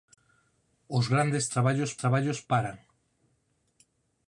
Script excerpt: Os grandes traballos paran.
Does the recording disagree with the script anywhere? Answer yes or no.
yes